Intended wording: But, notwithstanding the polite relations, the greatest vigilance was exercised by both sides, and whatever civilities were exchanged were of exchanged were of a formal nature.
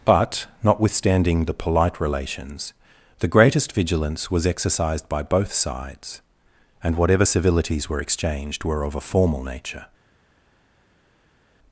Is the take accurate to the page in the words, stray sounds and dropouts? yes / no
no